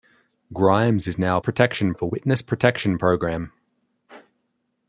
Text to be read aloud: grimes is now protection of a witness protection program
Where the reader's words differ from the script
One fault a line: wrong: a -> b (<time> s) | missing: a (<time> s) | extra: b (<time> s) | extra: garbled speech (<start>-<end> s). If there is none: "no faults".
no faults